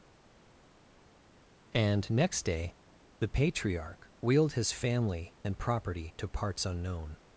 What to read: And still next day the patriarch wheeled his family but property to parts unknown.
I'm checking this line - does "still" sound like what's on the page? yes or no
no